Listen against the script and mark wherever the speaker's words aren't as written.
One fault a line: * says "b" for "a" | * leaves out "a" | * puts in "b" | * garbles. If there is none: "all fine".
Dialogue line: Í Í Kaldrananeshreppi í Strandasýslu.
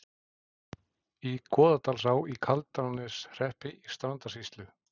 * puts in "Goðdalsá"